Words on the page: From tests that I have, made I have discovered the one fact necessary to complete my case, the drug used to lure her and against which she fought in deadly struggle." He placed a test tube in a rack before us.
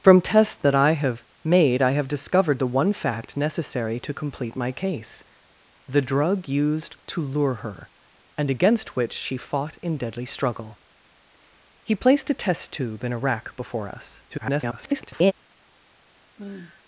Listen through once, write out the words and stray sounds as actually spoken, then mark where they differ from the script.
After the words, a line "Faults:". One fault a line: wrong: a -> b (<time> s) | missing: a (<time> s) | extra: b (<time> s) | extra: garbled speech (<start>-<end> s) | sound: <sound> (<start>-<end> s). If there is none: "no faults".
From tests that I have, made I have discovered the one fact necessary to complete my case, the drug used to lure her and against which she fought in deadly struggle." He placed a test tube in a rack before us. [garbled]
Faults:
extra: garbled speech (14.3-15.3 s)
sound: sigh (16.4-16.8 s)